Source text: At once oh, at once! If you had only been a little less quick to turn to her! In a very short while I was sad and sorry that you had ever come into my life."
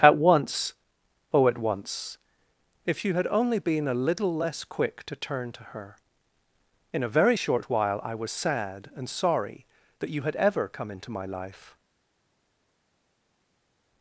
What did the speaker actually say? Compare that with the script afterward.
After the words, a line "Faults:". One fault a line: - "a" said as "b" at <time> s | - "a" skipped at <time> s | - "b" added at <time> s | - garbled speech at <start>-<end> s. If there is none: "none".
At once oh, at once! If you had only been a little less quick to turn to her! In a very short while I was sad and sorry that you had ever come into my life."
Faults:
none